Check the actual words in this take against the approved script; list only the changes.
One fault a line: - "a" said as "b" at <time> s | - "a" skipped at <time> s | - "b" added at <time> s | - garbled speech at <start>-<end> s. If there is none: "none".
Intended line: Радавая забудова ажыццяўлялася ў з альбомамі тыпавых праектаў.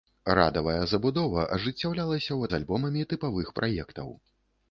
none